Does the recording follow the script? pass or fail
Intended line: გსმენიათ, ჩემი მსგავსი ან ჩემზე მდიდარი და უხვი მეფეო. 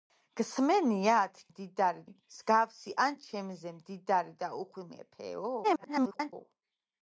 fail